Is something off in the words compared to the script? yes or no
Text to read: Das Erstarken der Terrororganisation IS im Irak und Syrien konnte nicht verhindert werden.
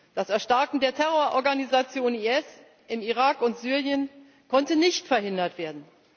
no